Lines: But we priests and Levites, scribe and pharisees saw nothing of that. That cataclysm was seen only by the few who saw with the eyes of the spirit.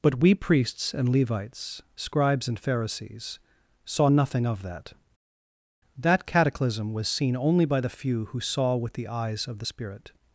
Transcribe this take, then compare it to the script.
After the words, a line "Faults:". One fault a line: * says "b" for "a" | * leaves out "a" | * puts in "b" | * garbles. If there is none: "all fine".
But we priests and Levites, scribes and pharisees saw nothing of that. That cataclysm was seen only by the few who saw with the eyes of the spirit.
Faults:
* says "scribes" for "scribe"